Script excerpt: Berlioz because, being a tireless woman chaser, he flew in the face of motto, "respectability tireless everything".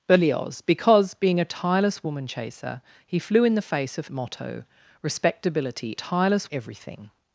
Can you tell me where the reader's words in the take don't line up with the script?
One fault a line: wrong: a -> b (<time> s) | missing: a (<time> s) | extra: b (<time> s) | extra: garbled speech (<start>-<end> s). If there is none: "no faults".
no faults